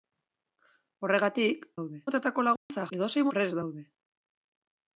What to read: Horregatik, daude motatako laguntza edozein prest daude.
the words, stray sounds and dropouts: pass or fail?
fail